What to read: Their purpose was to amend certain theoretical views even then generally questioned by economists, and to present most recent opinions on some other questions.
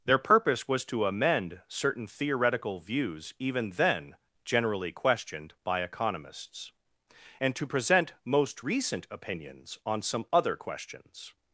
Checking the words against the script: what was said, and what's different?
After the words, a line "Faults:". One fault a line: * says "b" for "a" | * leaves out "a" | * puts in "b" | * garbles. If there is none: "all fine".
Their purpose was to amend certain theoretical views even then generally questioned by economists, and to present most recent opinions on some other questions.
Faults:
all fine